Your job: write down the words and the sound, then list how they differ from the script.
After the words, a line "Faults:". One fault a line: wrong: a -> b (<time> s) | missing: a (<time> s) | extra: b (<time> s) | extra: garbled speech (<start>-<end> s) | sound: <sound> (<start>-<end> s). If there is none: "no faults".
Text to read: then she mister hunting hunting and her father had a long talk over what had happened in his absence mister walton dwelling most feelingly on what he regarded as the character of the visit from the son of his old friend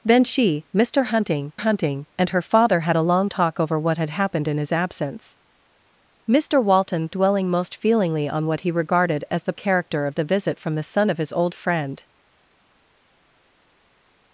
then she mister hunting hunting and her father had a long talk over what had happened in his absence mister walton dwelling most feelingly on what he regarded as the character of the visit from the son of his old friend
Faults:
no faults